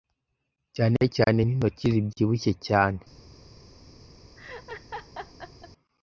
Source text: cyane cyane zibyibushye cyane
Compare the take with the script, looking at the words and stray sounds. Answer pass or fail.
fail